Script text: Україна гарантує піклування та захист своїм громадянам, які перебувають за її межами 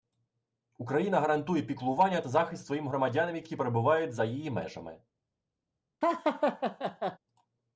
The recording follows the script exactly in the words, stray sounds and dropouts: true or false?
false